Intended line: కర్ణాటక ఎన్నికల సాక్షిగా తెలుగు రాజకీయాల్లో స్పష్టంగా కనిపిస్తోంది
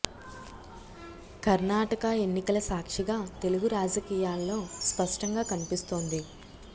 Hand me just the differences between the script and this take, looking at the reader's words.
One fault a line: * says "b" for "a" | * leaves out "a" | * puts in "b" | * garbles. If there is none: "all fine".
all fine